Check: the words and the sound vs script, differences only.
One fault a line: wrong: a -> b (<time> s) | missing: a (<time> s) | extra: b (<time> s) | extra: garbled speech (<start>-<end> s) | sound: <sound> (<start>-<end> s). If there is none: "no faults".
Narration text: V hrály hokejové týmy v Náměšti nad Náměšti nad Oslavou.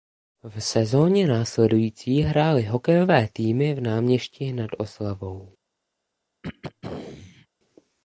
extra: sezóně následující (0.6 s)
missing: Náměšti nad (4.7 s)
sound: throat clearing (6.4-7.5 s)